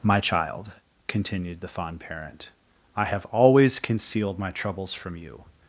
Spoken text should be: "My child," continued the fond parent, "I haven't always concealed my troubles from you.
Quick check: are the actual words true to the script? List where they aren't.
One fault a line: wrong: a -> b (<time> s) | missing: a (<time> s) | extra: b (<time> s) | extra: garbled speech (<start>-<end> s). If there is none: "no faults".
wrong: haven't -> have (3.0 s)